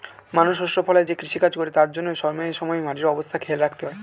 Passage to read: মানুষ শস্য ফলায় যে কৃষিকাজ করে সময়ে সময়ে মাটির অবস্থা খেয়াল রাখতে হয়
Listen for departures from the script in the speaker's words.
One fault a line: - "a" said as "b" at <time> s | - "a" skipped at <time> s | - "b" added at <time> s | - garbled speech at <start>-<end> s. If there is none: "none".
- "তার জন্যে" added at 1.7 s